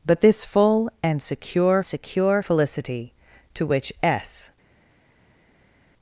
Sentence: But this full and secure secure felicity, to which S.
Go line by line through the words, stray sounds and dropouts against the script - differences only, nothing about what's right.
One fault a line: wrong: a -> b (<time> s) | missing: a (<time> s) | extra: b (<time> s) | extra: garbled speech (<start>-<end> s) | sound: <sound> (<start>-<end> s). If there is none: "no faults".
no faults